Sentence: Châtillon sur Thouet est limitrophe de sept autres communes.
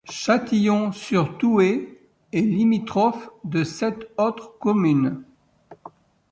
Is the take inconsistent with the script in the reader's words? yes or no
no